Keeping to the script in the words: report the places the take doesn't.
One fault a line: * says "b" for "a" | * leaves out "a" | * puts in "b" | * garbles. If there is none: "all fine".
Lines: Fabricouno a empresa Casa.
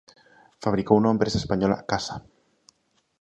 * puts in "española"